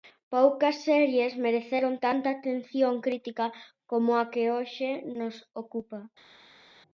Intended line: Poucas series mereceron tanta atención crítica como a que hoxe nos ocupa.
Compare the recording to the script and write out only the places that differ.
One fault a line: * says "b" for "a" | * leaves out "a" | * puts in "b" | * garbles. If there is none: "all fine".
all fine